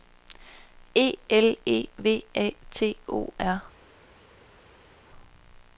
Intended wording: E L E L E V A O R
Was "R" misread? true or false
false